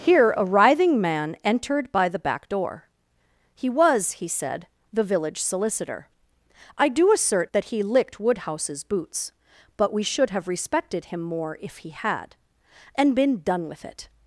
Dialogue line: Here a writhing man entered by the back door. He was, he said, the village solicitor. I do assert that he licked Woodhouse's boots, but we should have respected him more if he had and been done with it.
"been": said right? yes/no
yes